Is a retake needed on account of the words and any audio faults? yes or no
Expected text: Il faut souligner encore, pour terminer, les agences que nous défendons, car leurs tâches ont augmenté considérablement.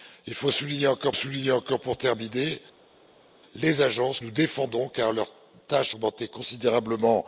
yes